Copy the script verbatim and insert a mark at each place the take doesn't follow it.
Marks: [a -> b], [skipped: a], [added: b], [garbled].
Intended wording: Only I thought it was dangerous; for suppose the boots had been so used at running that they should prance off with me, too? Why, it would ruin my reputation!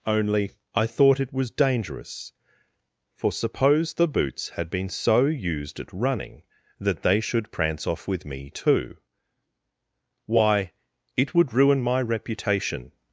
Only I thought it was dangerous; for suppose the boots had been so used at running that they should prance off with me, too? Why, it would ruin my reputation!